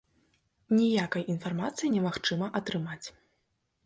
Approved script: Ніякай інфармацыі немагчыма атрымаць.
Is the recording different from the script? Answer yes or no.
no